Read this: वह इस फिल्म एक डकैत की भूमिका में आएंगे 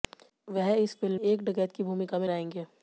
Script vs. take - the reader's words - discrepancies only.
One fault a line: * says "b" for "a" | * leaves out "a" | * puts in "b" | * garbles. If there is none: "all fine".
all fine